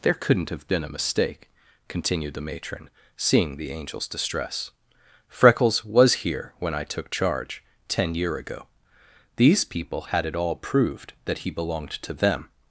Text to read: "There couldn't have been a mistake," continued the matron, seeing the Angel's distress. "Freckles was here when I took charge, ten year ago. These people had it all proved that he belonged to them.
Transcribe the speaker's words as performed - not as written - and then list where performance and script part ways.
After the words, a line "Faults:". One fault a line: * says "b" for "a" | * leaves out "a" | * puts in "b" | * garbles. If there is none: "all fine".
"There couldn't have been a mistake," continued the matron, seeing the Angel's distress. "Freckles was here when I took charge, ten year ago. These people had it all proved that he belonged to them.
Faults:
all fine